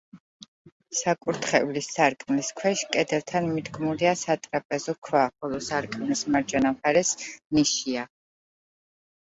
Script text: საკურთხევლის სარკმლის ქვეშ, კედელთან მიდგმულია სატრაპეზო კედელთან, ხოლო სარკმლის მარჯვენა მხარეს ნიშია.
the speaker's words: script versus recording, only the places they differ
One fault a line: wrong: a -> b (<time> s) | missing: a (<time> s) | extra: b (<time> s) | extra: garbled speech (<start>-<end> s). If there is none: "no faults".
wrong: კედელთან -> ქვა (5.1 s)